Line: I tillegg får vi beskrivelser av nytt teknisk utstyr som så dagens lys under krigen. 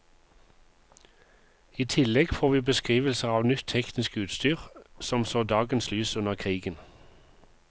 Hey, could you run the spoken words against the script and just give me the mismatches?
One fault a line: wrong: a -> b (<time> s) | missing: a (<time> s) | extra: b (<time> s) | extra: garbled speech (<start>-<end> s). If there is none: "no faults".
no faults